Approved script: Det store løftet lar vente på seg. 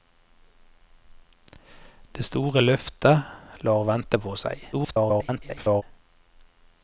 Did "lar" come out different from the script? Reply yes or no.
no